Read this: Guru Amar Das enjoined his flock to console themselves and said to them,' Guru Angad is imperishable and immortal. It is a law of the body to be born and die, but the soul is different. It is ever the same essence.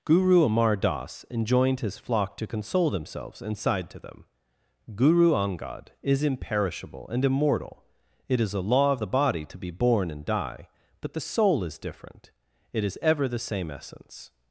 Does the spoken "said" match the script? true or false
false